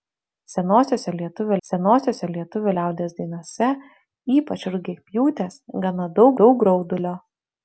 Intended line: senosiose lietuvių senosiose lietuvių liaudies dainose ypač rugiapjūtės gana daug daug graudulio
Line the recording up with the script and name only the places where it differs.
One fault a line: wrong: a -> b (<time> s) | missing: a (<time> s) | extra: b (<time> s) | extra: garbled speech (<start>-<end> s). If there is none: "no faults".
no faults